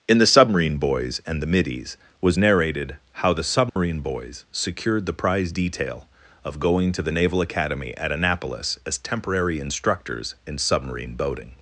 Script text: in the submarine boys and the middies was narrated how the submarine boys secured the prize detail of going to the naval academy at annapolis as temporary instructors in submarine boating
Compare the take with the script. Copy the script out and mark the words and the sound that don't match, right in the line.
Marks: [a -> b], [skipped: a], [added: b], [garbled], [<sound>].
in the submarine boys and the middies was narrated how the submarine [dropout] boys secured the prize detail of going to the naval academy at annapolis as temporary instructors in submarine boating